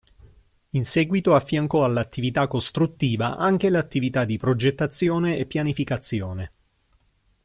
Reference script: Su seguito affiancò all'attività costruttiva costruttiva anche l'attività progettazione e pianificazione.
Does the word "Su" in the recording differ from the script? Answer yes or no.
yes